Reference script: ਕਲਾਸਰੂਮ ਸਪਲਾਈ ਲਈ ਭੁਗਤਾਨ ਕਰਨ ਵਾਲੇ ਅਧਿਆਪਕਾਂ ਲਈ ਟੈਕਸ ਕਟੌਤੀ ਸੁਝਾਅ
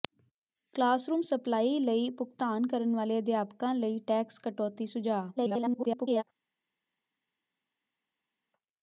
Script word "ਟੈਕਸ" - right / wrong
right